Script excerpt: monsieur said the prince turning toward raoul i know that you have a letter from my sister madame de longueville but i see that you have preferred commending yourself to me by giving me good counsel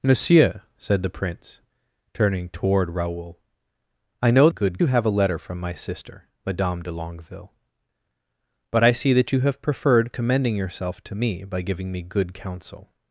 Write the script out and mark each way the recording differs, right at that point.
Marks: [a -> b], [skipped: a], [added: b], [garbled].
monsieur said the prince turning toward raoul i know [that -> good] you have a letter from my sister madame de longueville but i see that you have preferred commending yourself to me by giving me good counsel